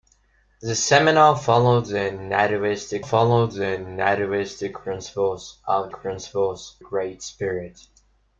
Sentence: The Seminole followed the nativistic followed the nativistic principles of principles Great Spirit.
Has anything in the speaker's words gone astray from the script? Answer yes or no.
no